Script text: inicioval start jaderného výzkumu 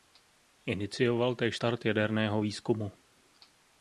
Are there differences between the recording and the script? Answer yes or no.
yes